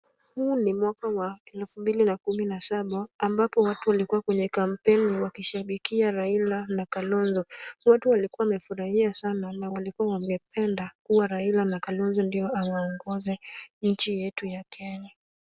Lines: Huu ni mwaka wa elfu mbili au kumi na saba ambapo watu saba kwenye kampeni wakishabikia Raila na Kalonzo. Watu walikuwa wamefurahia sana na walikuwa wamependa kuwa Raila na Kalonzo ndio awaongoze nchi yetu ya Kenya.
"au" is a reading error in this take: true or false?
true